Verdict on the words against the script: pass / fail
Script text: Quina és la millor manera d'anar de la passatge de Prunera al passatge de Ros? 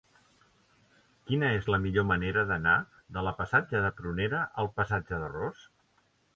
pass